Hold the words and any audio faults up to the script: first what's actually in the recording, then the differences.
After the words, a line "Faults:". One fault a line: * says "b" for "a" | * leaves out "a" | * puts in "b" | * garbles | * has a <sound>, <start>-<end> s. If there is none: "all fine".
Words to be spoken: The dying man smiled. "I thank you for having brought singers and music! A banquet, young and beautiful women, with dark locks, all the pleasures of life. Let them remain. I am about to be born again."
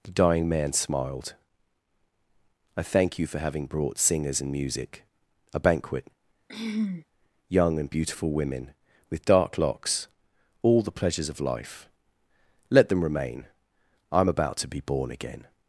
The dying man smiled. "I thank you for having brought singers and music! A banquet, young and beautiful women, with dark locks, all the pleasures of life. Let them remain. I am about to be born again."
Faults:
* has a throat clearing, 6.5-7.0 s